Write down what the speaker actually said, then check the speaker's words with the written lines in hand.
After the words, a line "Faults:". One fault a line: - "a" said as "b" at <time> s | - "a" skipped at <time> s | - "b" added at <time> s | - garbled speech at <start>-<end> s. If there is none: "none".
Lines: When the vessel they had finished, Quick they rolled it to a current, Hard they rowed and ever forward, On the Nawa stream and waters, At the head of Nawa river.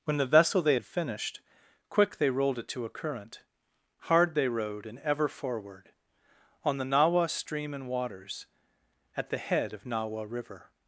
When the vessel they had finished, Quick they rolled it to a current, Hard they rowed and ever forward, On the Nawa stream and waters, At the head of Nawa river.
Faults:
none